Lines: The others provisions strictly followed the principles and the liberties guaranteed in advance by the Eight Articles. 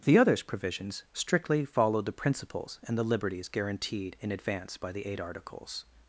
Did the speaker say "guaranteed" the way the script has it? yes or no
yes